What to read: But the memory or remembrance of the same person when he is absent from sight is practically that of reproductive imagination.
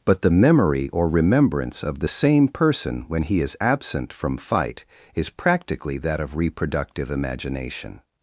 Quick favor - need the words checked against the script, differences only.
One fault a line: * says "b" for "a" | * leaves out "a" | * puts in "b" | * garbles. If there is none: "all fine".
* says "fight" for "sight"